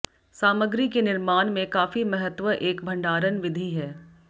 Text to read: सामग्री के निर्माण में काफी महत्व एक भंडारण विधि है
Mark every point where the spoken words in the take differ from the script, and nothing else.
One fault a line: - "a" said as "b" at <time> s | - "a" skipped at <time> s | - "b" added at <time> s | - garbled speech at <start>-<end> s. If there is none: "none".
none